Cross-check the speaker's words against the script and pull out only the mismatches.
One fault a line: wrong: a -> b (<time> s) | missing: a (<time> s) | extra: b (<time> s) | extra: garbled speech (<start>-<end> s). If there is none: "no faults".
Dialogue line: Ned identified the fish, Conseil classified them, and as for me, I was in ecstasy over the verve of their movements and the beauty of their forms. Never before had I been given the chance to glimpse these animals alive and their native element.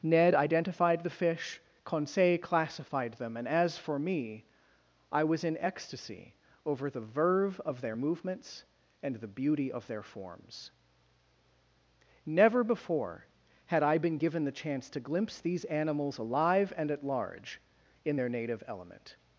extra: at large in (16.9 s)